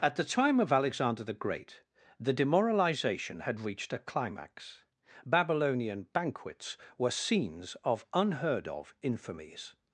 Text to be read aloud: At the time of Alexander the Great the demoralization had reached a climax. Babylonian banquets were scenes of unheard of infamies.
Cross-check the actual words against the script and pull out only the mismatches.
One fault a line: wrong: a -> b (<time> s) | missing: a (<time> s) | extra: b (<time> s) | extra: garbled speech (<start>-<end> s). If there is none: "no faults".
no faults